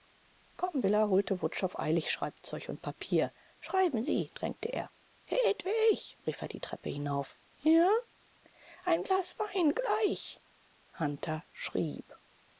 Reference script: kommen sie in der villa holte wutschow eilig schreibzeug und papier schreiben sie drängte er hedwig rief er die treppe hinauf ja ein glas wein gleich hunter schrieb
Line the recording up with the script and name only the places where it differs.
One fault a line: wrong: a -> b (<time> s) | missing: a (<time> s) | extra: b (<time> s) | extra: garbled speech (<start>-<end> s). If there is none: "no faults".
missing: sie in der (0.8 s)